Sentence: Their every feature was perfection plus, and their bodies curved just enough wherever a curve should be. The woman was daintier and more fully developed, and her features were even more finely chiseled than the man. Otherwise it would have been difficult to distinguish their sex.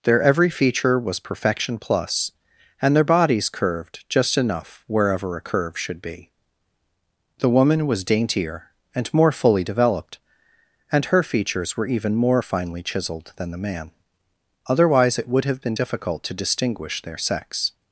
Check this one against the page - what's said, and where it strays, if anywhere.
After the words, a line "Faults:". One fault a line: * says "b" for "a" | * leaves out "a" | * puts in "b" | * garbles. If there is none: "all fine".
Their every feature was perfection plus, and their bodies curved just enough wherever a curve should be. The woman was daintier and more fully developed, and her features were even more finely chiseled than the man. Otherwise it would have been difficult to distinguish their sex.
Faults:
all fine